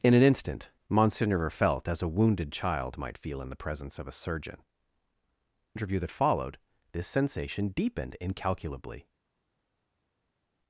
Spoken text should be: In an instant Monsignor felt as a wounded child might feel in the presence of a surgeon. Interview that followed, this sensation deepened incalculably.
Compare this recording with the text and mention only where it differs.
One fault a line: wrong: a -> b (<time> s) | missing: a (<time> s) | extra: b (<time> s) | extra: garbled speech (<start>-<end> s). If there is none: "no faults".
no faults